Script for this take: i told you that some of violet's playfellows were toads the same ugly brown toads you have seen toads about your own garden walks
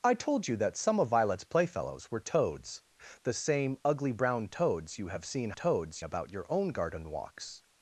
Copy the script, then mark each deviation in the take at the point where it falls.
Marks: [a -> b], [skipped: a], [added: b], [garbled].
i told you that some of violet's playfellows were toads the same ugly brown toads you have seen toads about your own garden walks